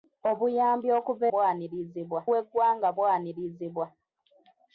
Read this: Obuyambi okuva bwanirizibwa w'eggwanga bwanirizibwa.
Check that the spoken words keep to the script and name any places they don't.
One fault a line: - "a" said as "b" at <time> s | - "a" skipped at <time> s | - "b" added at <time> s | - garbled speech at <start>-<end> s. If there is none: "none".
none